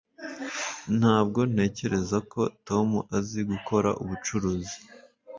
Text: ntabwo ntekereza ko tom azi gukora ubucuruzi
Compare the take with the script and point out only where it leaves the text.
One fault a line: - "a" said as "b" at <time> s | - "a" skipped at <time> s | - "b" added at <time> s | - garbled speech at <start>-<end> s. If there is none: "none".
none